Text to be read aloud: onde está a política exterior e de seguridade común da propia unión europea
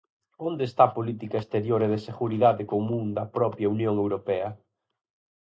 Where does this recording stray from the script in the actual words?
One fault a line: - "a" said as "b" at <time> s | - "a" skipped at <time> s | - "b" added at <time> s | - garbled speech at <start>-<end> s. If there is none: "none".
none